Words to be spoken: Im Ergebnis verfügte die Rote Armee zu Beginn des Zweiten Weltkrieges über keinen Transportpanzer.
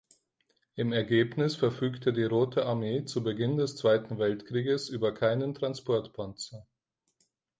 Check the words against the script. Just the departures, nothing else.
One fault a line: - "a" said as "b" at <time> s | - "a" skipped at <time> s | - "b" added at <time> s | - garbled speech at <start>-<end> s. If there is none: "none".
none